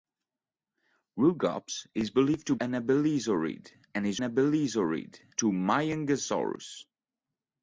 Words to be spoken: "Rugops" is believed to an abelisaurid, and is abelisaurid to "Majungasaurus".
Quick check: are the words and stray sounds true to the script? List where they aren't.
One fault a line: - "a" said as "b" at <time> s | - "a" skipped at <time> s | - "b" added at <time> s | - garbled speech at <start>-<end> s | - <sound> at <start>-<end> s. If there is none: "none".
none